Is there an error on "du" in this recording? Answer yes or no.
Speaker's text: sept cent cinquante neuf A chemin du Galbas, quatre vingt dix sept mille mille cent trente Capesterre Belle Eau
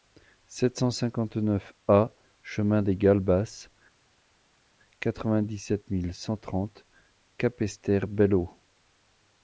yes